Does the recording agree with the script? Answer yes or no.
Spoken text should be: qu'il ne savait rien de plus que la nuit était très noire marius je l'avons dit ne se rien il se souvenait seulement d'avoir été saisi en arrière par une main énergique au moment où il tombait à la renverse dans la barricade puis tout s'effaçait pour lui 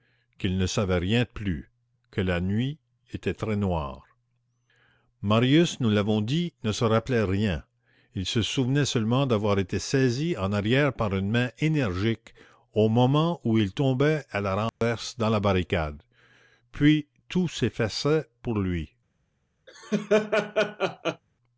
no